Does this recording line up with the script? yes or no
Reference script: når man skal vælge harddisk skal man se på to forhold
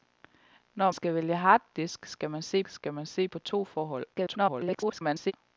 no